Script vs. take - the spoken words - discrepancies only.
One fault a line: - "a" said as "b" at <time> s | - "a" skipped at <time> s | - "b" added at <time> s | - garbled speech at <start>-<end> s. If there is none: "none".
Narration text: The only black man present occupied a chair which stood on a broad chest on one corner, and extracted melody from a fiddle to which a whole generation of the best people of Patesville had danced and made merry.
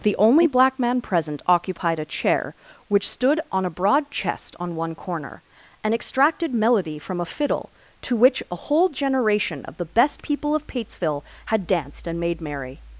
none